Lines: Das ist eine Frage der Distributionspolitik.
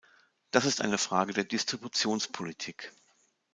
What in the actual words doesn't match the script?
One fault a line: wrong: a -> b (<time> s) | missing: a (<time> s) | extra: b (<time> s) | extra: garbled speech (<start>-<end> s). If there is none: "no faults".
no faults